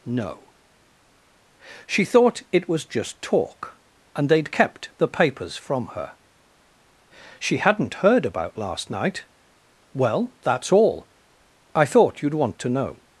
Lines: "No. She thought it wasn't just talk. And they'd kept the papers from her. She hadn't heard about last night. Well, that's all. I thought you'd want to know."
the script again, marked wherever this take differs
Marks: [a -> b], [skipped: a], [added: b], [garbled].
"No. She thought it [wasn't -> was] just talk. And they'd kept the papers from her. She hadn't heard about last night. Well, that's all. I thought you'd want to know."